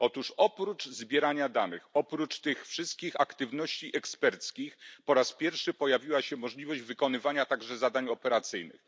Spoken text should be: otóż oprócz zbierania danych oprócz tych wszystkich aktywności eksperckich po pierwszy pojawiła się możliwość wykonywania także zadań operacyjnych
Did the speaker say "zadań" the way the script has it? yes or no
yes